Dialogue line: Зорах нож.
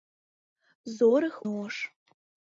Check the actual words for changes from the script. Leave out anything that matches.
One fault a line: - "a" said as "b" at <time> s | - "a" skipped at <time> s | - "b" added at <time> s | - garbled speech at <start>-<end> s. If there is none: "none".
none